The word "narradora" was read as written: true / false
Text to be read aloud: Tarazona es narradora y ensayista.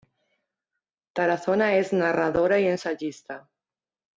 true